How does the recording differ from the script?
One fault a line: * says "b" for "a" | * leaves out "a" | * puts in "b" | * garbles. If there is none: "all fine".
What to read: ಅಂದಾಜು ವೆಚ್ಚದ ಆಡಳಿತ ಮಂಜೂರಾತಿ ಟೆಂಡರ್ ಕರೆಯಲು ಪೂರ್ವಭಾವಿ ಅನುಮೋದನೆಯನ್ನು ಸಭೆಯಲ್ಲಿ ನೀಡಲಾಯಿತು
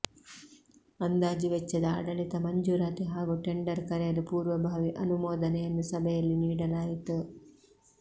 * puts in "ಹಾಗೂ"